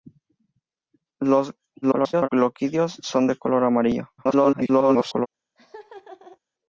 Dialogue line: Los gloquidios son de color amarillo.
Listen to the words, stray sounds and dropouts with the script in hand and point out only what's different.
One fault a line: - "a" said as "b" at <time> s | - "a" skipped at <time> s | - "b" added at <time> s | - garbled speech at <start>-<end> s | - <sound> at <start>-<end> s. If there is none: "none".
- garbled speech at 1.8-2.3 s
- garbled speech at 4.2-5.3 s
- laugh at 5.6-6.4 s